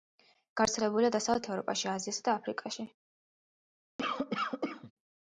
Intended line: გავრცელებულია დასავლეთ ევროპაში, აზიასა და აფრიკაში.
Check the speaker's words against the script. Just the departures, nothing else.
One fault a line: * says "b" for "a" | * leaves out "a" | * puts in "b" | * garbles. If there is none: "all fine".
all fine